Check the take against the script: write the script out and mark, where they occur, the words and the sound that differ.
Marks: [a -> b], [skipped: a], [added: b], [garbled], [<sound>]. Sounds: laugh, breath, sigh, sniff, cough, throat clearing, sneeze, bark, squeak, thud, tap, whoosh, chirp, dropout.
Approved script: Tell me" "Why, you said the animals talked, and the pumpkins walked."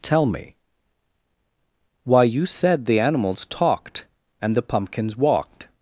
Tell me" "Why, you said the animals talked, and the pumpkins walked."